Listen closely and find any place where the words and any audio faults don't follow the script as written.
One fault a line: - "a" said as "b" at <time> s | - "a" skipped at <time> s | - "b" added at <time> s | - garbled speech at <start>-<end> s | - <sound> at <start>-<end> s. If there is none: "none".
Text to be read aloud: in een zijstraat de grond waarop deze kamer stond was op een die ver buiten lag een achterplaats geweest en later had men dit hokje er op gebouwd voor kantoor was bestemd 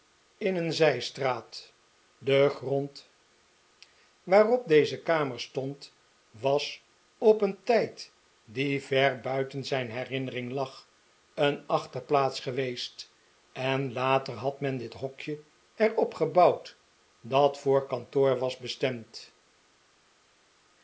- "tijd" added at 7.6 s
- "zijn herinnering" added at 9.7 s
- "dat" added at 17.2 s